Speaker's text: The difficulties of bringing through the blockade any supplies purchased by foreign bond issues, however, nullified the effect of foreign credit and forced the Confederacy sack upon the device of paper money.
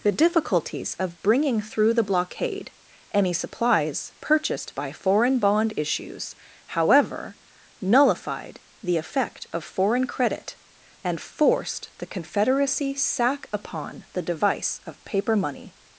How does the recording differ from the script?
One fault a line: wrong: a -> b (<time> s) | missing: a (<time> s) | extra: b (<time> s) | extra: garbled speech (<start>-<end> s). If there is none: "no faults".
no faults